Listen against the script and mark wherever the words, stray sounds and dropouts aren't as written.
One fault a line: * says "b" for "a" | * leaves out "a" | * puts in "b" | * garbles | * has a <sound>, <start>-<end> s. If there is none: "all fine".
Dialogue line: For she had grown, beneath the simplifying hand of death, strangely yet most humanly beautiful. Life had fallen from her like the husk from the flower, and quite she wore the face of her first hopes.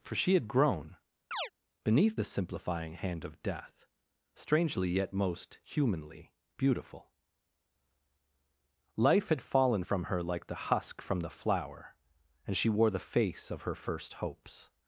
* has a chirp, 1.3-1.5 s
* leaves out "quite"